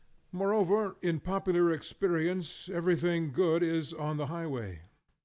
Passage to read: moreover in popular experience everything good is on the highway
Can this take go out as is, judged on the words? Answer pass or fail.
pass